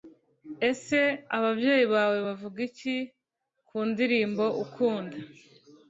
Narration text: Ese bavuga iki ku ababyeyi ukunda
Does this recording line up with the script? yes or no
no